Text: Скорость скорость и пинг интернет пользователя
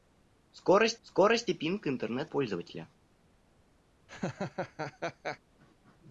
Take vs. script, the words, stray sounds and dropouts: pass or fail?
fail